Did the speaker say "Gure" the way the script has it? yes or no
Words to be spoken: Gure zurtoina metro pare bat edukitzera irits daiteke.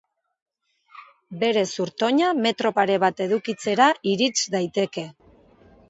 no